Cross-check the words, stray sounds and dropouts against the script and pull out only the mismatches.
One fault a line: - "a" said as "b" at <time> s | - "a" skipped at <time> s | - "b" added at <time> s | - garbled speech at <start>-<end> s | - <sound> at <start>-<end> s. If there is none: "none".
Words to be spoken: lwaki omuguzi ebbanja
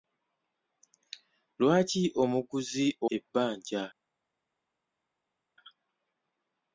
none